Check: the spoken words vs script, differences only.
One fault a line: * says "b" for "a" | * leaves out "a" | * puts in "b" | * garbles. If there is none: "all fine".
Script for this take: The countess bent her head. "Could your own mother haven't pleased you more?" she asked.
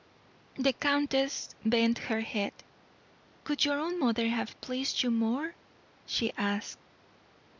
* says "have" for "haven't"